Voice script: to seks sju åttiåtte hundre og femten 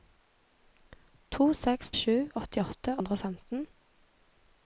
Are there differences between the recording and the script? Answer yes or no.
no